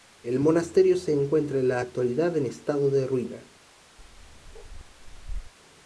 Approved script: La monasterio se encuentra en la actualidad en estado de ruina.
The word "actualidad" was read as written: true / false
true